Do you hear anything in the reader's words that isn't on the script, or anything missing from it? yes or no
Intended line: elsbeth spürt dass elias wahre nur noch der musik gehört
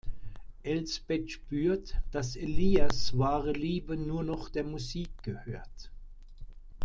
yes